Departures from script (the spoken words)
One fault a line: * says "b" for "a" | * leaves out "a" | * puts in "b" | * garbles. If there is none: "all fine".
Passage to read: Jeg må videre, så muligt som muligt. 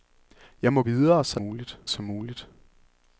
all fine